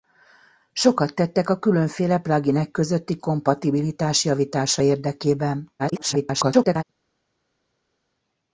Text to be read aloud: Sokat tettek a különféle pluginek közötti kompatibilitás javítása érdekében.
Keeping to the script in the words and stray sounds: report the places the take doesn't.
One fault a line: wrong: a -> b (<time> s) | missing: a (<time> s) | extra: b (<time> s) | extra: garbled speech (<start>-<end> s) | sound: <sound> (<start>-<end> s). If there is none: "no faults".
extra: garbled speech (5.8-6.8 s)